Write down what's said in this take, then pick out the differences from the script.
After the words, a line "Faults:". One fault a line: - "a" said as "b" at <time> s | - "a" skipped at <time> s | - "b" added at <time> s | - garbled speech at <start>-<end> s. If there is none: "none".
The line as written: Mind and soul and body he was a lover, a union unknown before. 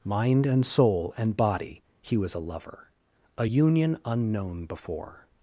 Mind and soul and body he was a lover, a union unknown before.
Faults:
none